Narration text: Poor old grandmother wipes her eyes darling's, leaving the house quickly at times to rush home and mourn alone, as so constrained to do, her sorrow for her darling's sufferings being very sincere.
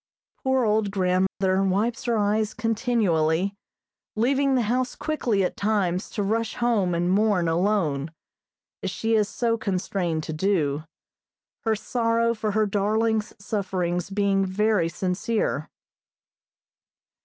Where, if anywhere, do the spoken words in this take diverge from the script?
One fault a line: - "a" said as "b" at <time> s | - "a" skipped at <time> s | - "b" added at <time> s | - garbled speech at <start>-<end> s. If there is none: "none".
- "darling's" said as "continually" at 2.5 s
- "she is" added at 8.9 s